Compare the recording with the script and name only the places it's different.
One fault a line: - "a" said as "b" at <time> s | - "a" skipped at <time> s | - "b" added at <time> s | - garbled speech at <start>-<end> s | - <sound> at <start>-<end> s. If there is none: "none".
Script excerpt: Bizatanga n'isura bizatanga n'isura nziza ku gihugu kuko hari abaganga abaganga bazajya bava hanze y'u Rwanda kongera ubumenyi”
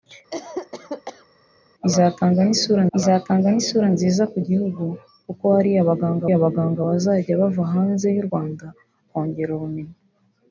- cough at 0.3-1.3 s